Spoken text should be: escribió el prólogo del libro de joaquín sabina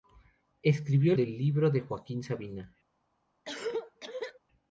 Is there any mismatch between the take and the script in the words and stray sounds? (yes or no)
yes